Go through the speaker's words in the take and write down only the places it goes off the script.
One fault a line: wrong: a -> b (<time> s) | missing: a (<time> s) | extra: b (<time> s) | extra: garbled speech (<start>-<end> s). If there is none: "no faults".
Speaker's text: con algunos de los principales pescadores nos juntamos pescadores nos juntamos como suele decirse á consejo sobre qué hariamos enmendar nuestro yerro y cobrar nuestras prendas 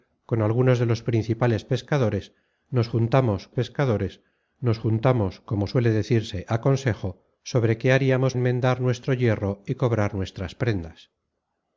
no faults